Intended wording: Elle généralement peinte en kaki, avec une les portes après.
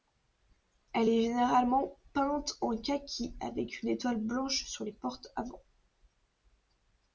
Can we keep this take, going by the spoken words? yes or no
no